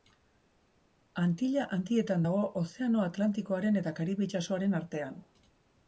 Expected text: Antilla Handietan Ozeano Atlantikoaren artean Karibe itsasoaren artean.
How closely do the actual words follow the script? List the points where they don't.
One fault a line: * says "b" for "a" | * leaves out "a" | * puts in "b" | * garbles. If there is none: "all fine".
* puts in "dago"
* says "eta" for "artean"